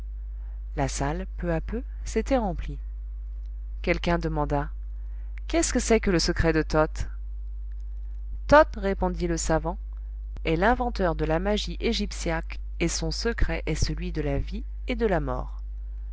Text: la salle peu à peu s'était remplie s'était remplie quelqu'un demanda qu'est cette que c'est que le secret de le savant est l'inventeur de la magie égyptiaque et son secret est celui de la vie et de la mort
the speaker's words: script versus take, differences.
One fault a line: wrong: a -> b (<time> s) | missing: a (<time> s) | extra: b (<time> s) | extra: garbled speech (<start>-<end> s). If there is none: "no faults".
missing: s'était remplie (2.8 s)
wrong: cette -> ce (5.6 s)
extra: toth toth répondit (6.6 s)